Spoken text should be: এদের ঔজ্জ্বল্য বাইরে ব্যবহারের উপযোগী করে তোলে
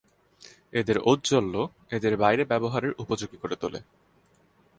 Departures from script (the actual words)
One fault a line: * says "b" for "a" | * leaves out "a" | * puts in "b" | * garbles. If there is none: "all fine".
* puts in "এদের"